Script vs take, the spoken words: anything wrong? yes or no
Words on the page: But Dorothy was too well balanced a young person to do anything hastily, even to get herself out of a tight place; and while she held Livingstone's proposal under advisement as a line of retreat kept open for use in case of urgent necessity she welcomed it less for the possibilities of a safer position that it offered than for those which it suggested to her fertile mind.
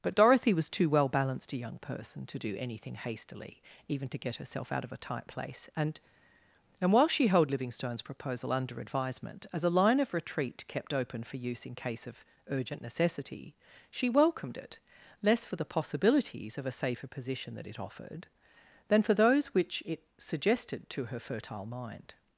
yes